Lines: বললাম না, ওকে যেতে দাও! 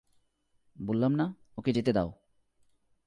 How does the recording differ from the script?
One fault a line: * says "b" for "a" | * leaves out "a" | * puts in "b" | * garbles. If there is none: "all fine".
all fine